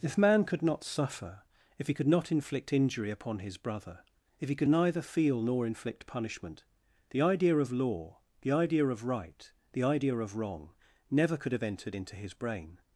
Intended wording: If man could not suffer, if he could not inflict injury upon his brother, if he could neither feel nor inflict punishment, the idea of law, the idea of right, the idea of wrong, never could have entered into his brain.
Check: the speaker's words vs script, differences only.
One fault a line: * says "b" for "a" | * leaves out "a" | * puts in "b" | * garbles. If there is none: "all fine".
all fine